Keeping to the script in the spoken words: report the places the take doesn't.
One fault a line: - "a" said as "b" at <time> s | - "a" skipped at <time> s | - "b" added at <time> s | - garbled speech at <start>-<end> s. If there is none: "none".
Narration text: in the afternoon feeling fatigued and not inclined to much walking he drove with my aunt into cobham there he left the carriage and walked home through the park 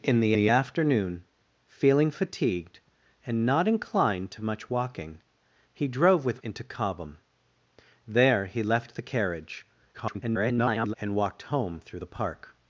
- "the" added at 0.3 s
- "my aunt" skipped at 6.4 s
- garbled speech at 9.9-10.9 s